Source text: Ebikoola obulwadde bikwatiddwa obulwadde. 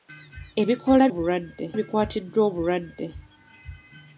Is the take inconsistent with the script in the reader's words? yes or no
no